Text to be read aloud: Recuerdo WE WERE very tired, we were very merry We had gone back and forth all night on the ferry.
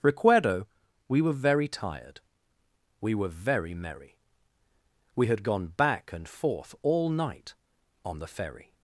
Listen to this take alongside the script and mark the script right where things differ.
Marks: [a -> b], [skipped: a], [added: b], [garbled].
Recuerdo WE WERE very tired, we were very merry We had gone back and forth all night on the ferry.